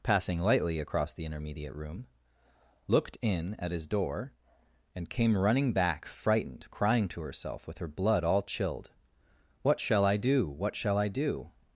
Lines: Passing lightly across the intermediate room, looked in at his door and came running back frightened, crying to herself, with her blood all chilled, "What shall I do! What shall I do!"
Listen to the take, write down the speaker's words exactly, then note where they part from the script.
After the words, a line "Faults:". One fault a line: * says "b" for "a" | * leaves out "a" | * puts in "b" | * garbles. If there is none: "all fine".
Passing lightly across the intermediate room, looked in at his door and came running back frightened, crying to herself, with her blood all chilled, "What shall I do! What shall I do!"
Faults:
all fine